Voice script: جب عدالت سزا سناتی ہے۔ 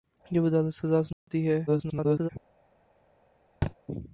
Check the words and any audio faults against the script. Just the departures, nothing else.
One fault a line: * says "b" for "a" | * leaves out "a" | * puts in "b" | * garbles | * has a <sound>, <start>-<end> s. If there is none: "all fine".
* has a dropout, 1.1-1.3 s
* garbles
* has a thud, 3.6-3.7 s